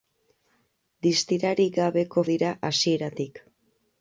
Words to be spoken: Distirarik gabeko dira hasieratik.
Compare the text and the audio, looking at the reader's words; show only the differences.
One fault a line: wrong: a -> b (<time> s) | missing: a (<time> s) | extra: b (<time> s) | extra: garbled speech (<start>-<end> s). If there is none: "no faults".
no faults